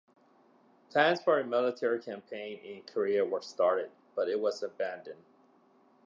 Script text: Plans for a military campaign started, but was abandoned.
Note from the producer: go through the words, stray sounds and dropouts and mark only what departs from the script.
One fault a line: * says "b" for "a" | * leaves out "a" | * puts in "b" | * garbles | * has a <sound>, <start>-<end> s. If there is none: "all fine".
* puts in "in Korea were"
* puts in "it"